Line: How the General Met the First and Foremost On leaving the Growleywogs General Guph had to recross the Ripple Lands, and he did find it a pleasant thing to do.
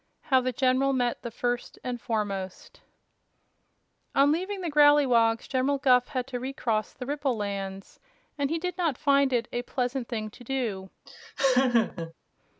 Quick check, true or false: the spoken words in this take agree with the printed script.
false